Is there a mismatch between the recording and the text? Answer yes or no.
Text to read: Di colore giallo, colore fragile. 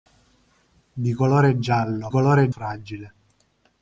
no